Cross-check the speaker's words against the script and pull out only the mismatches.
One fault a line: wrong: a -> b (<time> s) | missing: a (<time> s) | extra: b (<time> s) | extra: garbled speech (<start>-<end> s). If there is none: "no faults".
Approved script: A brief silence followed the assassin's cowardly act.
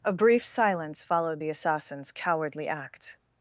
no faults